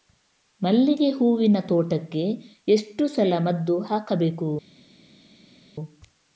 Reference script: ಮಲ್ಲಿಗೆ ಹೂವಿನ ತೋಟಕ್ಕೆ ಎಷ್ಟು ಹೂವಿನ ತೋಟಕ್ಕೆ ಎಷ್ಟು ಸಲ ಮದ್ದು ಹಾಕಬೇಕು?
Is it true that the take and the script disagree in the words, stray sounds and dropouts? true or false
true